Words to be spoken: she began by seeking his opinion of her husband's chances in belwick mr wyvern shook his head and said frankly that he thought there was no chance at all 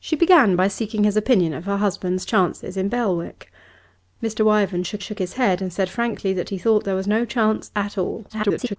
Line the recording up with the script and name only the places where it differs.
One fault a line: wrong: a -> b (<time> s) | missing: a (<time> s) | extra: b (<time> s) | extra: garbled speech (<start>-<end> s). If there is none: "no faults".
extra: shook (5.0 s)
extra: garbled speech (8.3-8.8 s)